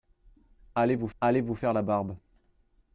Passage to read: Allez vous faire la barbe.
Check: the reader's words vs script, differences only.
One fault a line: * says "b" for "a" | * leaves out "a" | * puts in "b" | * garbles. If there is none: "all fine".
* puts in "allez vous"